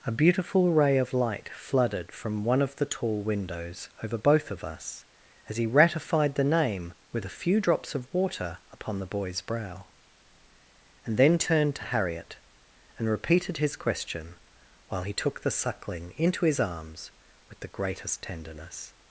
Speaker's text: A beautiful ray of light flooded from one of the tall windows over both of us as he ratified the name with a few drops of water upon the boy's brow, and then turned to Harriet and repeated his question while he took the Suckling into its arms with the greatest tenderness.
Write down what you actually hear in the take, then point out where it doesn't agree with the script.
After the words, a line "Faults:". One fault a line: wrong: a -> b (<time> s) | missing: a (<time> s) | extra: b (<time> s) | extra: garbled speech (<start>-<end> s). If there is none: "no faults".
A beautiful ray of light flooded from one of the tall windows over both of us as he ratified the name with a few drops of water upon the boy's brow, and then turned to Harriet and repeated his question while he took the Suckling into his arms with the greatest tenderness.
Faults:
wrong: its -> his (16.5 s)